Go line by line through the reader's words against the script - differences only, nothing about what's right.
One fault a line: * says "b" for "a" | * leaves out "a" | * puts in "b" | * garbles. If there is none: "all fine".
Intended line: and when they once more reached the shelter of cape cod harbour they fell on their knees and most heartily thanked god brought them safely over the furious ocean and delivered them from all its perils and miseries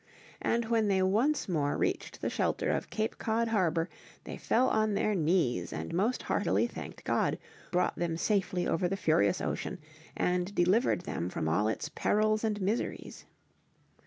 all fine